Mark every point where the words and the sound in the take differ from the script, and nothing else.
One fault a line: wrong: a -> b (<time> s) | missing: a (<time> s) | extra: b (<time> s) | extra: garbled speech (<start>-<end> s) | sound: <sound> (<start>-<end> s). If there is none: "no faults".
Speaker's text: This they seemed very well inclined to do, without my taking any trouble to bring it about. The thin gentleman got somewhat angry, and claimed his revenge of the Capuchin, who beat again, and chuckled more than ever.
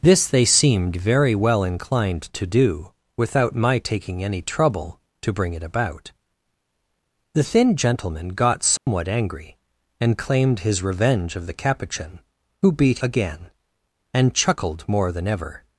sound: dropout (8.8-8.9 s)